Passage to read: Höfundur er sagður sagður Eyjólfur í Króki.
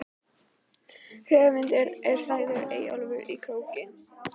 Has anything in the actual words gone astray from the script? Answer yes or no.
yes